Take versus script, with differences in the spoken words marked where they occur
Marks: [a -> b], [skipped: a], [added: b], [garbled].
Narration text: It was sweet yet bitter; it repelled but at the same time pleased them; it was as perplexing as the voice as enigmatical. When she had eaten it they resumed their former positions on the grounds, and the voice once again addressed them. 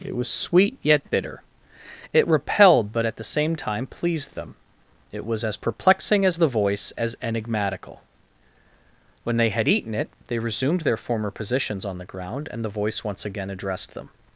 It was sweet yet bitter; it repelled but at the same time pleased them; it was as perplexing as the voice as enigmatical. When [she -> they] had eaten it they resumed their former positions on the [grounds, -> ground] and the voice once again addressed them.